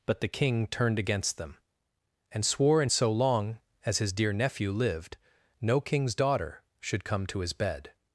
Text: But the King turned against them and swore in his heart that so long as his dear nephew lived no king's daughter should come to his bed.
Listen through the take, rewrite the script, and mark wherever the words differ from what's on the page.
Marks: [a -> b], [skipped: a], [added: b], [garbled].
But the King turned against them and swore in [skipped: his heart that] so long as his dear nephew lived no king's daughter should come to his bed.